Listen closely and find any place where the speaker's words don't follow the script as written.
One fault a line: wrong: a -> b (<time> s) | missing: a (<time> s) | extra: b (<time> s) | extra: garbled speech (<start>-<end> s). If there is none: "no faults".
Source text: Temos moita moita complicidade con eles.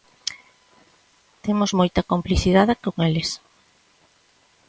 missing: moita (2.0 s)